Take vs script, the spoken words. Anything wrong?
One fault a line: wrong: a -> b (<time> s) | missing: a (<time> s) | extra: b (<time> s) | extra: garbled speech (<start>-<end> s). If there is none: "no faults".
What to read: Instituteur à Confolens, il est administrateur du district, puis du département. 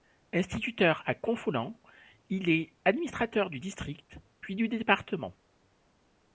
no faults